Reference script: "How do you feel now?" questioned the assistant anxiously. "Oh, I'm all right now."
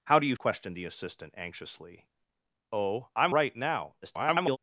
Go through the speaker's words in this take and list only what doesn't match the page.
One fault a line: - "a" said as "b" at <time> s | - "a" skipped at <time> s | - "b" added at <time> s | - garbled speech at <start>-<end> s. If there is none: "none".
- "feel now" skipped at 0.3 s
- "all" skipped at 3.3 s
- garbled speech at 4.0-4.6 s